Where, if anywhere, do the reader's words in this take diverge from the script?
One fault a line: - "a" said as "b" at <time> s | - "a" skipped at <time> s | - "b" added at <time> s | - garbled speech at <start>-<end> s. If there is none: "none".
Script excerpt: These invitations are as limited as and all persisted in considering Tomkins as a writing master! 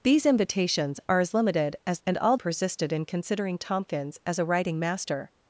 none